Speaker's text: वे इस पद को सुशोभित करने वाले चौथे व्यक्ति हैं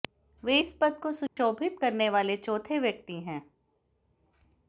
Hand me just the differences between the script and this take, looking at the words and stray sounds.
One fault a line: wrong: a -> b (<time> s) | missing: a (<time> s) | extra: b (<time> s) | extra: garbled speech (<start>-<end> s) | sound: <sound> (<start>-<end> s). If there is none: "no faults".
sound: dropout (1.3-1.4 s)